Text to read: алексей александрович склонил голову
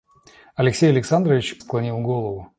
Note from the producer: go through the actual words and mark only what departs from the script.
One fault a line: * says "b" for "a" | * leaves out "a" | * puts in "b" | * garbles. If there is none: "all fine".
all fine